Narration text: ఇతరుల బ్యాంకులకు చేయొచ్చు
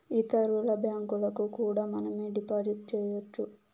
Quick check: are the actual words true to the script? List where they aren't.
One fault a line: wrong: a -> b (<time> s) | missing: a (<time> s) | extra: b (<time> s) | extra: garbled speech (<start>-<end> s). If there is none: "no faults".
extra: కూడా మనమే డిపాజిట్ (1.6 s)